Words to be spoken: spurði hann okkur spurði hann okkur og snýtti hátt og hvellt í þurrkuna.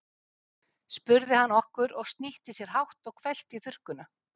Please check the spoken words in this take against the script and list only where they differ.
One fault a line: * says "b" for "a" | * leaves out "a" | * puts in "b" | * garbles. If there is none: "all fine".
* leaves out "spurði hann okkur"
* puts in "sér"